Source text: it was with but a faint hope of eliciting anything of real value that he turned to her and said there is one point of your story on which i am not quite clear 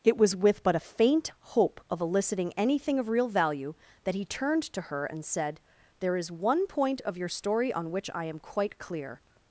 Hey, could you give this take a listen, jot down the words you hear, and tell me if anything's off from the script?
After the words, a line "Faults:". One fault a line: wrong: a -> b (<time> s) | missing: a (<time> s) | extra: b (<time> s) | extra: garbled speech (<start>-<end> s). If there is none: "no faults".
it was with but a faint hope of eliciting anything of real value that he turned to her and said there is one point of your story on which i am quite clear
Faults:
missing: not (8.4 s)